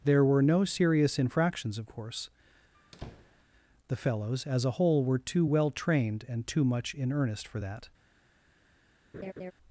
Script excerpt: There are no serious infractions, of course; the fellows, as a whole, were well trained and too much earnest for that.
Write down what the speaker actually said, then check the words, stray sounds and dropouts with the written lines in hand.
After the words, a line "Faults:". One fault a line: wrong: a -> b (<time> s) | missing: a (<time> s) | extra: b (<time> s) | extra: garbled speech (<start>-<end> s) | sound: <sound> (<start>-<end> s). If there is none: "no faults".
There were no serious infractions, of course; the fellows, as a whole, were too well trained and too much in earnest for that.
Faults:
wrong: are -> were (0.2 s)
sound: squeak (2.7-3.4 s)
extra: too (5.2 s)
extra: in (6.9 s)
sound: laugh (9.1-9.5 s)